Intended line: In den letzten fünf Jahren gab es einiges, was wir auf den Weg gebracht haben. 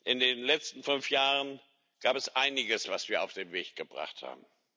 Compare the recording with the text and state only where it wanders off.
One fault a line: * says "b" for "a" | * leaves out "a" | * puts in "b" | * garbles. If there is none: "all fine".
all fine